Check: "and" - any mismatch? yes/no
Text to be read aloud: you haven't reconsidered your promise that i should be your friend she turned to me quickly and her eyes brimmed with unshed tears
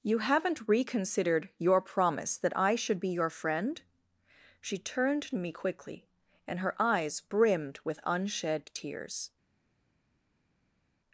no